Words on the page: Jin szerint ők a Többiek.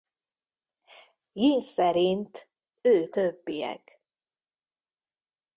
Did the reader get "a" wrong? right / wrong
wrong